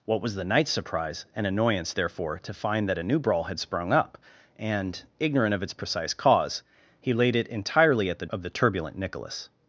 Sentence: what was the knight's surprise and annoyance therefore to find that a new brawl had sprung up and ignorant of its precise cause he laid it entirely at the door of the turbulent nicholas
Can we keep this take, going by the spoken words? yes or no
no